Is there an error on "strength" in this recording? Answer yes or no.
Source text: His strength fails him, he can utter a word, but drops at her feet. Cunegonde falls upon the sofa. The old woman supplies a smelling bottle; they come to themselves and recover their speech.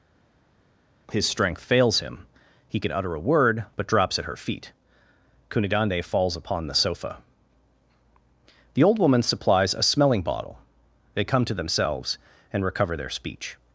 no